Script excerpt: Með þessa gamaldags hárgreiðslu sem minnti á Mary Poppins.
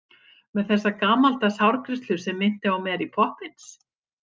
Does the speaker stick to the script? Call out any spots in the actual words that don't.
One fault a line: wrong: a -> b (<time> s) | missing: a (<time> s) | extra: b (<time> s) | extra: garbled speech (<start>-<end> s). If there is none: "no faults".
no faults